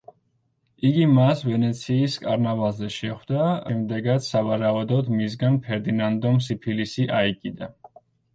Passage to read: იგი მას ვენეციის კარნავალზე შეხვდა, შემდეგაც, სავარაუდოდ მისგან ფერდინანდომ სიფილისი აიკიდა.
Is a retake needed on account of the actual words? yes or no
no